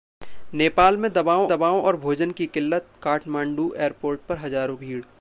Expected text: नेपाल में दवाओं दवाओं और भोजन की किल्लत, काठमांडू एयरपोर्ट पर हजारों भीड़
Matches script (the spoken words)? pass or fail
pass